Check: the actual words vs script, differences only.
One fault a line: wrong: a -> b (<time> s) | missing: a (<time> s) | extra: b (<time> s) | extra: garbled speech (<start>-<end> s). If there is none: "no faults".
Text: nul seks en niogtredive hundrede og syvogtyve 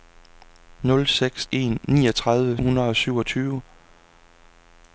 no faults